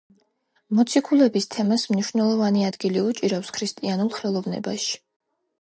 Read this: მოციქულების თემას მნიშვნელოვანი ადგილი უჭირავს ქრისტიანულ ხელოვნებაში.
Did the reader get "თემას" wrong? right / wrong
right